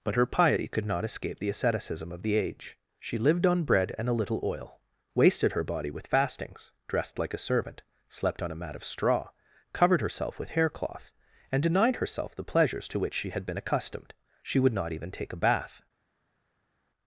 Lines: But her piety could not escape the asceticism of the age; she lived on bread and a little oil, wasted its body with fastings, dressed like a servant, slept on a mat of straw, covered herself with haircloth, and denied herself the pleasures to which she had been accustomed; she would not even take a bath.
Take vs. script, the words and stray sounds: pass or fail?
fail